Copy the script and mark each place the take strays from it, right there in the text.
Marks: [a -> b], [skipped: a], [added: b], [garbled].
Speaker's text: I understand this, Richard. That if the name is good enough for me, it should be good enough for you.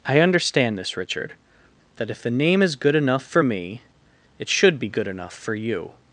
I understand this, Richard. That if the name is good enough for me, it should be good enough for you.